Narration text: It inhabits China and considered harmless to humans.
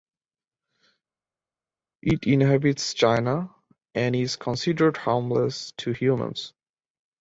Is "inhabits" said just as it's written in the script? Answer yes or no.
yes